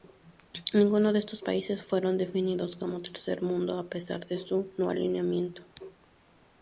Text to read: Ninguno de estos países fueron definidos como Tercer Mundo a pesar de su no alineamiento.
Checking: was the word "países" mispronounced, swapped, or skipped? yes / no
no